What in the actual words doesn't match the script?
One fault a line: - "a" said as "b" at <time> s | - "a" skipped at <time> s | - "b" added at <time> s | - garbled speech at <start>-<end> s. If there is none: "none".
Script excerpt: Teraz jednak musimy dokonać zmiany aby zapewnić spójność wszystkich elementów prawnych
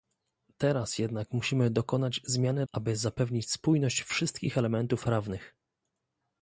none